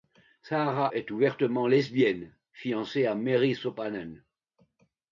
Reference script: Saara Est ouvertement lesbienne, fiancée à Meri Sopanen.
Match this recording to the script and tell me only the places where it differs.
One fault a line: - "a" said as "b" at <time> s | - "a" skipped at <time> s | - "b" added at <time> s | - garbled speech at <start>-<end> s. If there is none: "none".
none